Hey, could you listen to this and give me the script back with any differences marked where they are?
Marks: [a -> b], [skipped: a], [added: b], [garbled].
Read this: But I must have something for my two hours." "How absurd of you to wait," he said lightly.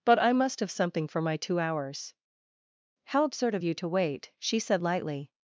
But I must have something for my two hours." "How absurd of you to wait," [he -> she] said lightly.